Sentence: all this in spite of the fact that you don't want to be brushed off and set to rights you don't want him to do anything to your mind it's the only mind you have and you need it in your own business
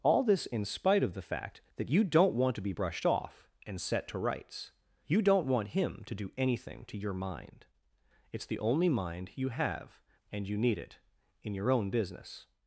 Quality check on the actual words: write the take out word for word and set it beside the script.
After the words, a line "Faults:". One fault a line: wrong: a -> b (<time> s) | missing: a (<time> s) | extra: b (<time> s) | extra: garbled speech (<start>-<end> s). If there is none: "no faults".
all this in spite of the fact that you don't want to be brushed off and set to rights you don't want him to do anything to your mind it's the only mind you have and you need it in your own business
Faults:
no faults